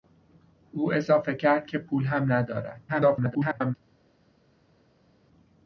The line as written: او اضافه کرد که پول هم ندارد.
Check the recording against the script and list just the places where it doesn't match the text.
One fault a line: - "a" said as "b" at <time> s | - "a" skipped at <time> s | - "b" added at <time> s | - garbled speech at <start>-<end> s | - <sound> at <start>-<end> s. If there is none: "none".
- garbled speech at 2.9-3.7 s